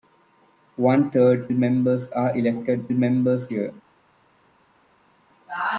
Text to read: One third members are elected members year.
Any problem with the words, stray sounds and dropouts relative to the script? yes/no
no